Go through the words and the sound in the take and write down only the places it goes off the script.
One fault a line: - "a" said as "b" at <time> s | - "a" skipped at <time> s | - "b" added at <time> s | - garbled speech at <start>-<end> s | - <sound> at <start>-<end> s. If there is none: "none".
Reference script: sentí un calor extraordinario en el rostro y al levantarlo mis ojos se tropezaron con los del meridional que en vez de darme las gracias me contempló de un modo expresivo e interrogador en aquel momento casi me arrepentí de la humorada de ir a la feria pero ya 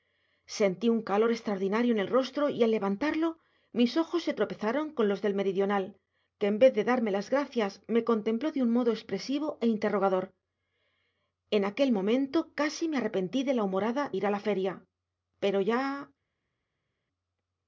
- "de" skipped at 14.1 s